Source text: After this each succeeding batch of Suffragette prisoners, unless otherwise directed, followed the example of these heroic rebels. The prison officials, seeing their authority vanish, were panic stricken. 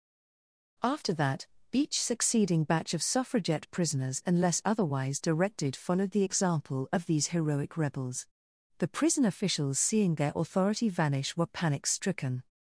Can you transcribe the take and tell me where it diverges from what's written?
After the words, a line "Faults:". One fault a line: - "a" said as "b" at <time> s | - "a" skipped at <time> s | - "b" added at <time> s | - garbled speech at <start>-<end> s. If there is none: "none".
After that each succeeding batch of Suffragette prisoners, unless otherwise directed, followed the example of these heroic rebels. The prison officials, seeing their authority vanish, were panic stricken.
Faults:
- "this" said as "that" at 1.1 s